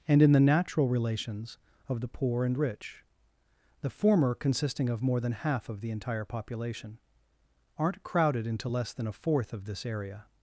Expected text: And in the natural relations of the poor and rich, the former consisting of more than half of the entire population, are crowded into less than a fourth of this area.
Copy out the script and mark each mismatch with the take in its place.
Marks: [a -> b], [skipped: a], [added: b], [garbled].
And in the natural relations of the poor and rich, the former consisting of more than half of the entire population, [are -> aren't] crowded into less than a fourth of this area.